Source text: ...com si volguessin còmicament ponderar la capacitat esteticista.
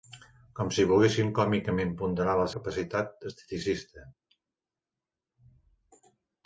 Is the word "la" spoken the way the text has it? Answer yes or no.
yes